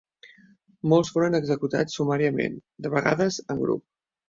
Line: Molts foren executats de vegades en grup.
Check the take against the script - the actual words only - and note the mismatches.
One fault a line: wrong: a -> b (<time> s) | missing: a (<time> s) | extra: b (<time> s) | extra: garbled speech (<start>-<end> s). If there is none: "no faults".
extra: sumàriament (2.0 s)